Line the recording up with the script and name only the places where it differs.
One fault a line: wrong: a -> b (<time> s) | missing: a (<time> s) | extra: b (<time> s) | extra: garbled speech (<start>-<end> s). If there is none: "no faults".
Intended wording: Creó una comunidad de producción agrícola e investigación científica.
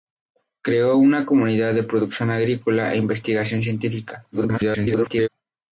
extra: garbled speech (4.3-5.3 s)